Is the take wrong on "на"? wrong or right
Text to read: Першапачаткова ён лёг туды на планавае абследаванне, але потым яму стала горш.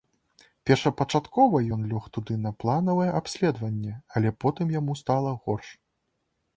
right